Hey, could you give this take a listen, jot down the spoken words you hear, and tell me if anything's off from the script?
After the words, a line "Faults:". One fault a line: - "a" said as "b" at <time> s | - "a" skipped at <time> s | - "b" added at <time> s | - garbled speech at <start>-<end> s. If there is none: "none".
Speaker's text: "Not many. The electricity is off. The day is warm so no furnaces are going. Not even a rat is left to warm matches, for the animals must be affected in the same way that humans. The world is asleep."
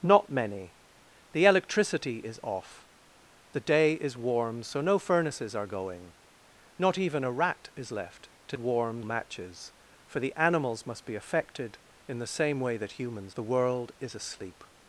"Not many. The electricity is off. The day is warm so no furnaces are going. Not even a rat is left to warm matches, for the animals must be affected in the same way that humans. The world is asleep."
Faults:
none